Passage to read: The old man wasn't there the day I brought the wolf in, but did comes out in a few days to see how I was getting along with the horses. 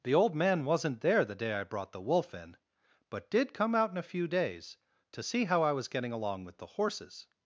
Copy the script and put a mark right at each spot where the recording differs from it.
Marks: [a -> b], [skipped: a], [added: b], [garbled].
The old man wasn't there the day I brought the wolf in, but did [comes -> come] out in a few days to see how I was getting along with the horses.